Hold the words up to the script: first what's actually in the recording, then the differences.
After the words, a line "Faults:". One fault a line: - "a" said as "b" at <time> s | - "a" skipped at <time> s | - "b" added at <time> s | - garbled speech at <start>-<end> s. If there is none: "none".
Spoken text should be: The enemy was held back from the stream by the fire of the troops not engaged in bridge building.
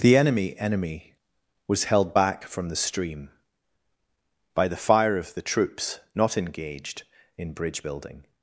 The enemy enemy was held back from the stream by the fire of the troops not engaged in bridge building.
Faults:
- "enemy" added at 0.6 s